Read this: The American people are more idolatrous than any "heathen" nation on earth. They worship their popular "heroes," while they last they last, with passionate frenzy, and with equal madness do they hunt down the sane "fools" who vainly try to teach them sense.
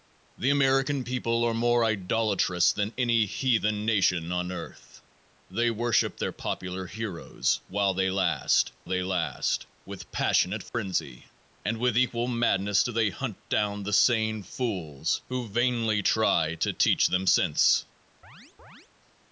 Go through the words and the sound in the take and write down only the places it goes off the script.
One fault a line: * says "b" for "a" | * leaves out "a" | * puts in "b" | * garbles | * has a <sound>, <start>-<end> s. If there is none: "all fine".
* has a dropout, 10.7-10.7 s
* has a chirp, 18.2-18.9 s